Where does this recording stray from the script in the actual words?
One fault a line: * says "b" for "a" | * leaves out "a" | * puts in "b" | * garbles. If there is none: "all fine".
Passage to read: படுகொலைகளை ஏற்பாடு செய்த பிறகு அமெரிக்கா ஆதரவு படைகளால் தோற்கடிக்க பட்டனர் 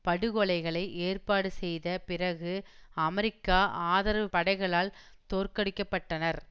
all fine